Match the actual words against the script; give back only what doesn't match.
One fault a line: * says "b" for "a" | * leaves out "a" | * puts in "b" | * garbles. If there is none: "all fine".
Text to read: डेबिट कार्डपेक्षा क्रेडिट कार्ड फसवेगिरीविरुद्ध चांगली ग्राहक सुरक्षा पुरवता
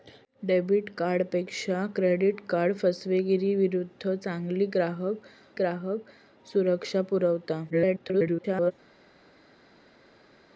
* puts in "ग्राहक"
* garbles